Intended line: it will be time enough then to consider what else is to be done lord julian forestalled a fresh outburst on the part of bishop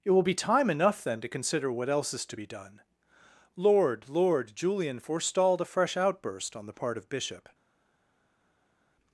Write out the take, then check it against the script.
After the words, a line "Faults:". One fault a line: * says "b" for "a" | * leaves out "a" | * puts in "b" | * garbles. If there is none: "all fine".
it will be time enough then to consider what else is to be done lord lord julian forestalled a fresh outburst on the part of bishop
Faults:
* puts in "lord"